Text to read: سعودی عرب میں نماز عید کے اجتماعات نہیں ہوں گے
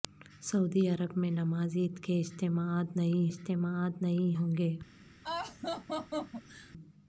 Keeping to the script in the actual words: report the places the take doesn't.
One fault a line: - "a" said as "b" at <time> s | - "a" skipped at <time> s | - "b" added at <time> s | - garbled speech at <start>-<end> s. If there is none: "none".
- "اجتماعات نہیں" added at 3.3 s